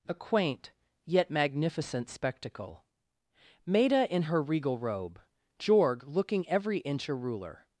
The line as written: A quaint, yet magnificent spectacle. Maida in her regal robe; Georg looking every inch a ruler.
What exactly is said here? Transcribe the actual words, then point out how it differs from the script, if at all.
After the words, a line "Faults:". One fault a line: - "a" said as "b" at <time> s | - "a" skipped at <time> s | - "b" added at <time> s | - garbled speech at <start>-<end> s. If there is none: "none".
A quaint, yet magnificent spectacle. Maida in her regal robe; Georg looking every inch a ruler.
Faults:
none